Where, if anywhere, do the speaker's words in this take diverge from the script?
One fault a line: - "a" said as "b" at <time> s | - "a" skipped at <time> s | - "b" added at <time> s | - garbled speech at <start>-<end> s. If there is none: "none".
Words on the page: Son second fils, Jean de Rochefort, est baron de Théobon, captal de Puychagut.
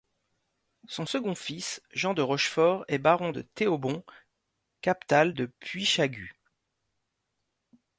none